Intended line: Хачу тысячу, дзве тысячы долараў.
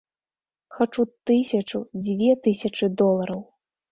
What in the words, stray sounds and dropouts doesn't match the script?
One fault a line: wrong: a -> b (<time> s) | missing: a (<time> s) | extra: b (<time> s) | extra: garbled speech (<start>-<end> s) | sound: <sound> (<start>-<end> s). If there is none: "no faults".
no faults